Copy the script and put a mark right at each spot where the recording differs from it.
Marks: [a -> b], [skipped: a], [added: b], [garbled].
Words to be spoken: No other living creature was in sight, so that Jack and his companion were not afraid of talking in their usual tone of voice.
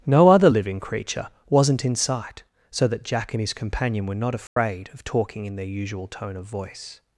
No other living creature [was -> wasn't] in sight, so that Jack and his companion were not afraid of talking in their usual tone of voice.